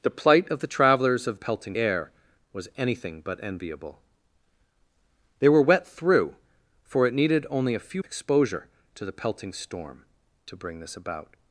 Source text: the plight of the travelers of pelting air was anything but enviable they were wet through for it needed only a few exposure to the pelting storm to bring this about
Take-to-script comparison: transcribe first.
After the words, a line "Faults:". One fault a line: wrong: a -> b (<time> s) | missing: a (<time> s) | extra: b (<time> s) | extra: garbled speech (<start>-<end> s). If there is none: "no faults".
the plight of the travelers of pelting air was anything but enviable they were wet through for it needed only a few exposure to the pelting storm to bring this about
Faults:
no faults